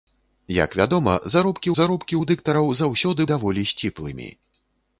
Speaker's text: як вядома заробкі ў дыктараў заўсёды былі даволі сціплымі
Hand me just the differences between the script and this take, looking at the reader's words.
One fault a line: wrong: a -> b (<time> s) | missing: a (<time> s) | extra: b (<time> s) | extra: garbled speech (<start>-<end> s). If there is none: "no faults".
extra: заробкі (1.8 s)
missing: былі (3.2 s)